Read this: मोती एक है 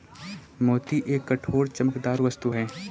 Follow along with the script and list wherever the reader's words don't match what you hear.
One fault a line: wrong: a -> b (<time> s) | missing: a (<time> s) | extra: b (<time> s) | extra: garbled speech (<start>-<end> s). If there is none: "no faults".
extra: कठोर चमकदार वस्तु (1.3 s)